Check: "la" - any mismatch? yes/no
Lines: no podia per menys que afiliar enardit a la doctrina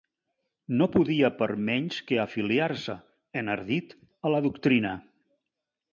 no